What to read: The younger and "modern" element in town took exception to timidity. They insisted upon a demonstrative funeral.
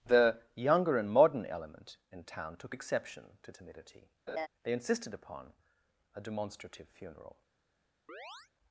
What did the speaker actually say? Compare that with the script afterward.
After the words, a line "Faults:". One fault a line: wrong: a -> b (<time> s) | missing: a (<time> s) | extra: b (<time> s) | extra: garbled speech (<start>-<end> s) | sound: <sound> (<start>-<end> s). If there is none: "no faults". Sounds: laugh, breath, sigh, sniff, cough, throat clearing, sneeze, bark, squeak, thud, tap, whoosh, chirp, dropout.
The younger and "modern" element in town took exception to timidity. They insisted upon a demonstrative funeral.
Faults:
sound: laugh (4.3-4.5 s)
sound: chirp (8.1-8.5 s)